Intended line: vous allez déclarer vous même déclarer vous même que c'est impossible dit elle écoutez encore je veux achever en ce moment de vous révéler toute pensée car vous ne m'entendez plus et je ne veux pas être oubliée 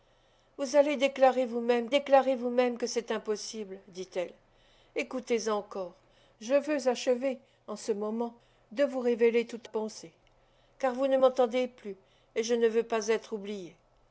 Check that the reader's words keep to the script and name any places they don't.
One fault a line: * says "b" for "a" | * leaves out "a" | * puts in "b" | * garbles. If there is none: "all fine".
all fine